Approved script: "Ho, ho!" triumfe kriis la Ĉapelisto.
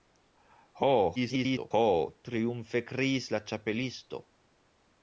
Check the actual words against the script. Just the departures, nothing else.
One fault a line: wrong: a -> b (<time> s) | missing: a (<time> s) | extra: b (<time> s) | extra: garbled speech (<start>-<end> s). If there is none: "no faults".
extra: garbled speech (1.2-1.7 s)